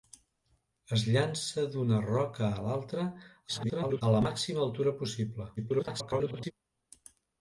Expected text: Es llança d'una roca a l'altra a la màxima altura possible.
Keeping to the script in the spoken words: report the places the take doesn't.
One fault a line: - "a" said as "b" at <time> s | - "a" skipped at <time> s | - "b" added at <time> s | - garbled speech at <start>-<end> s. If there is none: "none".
- garbled speech at 3.5-4.0 s
- garbled speech at 5.6-6.5 s